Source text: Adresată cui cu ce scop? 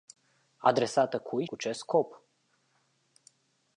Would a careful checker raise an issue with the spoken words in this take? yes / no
no